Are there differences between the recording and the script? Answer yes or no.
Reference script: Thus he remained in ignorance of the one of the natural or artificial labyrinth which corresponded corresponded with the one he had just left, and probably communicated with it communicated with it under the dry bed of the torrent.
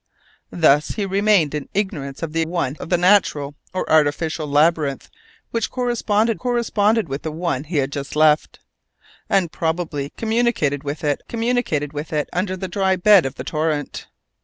no